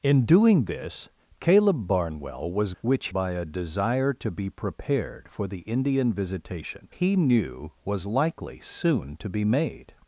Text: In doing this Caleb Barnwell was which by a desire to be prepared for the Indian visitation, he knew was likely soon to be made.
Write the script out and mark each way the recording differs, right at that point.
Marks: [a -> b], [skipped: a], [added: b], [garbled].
In doing this Caleb Barnwell was which by a desire to be prepared for the Indian visitation, he knew was likely soon to be made.